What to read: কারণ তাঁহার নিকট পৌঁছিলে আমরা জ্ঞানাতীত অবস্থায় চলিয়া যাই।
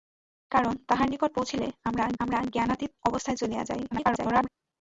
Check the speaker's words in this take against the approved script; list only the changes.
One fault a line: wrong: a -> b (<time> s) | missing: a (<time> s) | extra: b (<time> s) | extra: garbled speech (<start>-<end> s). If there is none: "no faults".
extra: আমরা (2.2 s)
extra: garbled speech (3.9-4.5 s)